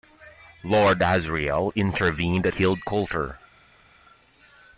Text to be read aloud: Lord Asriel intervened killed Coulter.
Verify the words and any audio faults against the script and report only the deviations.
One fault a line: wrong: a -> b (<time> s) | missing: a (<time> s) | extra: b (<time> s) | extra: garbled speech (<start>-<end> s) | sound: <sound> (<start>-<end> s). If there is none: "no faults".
no faults